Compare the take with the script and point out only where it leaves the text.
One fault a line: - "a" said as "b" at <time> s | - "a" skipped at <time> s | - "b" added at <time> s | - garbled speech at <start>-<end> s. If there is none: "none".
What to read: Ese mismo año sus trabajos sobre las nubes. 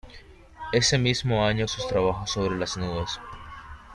none